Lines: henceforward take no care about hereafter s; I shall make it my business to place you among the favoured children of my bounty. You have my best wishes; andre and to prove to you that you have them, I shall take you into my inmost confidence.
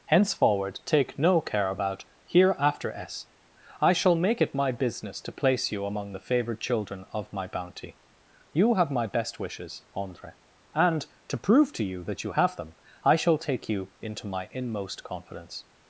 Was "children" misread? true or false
false